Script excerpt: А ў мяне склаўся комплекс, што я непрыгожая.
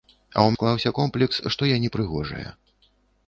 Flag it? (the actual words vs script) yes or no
yes